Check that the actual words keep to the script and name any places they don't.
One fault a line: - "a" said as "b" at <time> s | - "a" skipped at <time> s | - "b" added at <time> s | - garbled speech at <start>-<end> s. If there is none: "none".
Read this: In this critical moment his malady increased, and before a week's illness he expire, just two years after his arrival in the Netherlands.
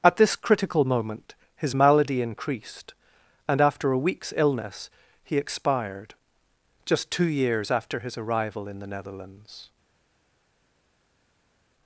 - "In" said as "At" at 0.0 s
- "before" said as "after" at 3.6 s
- "expire" said as "expired" at 5.4 s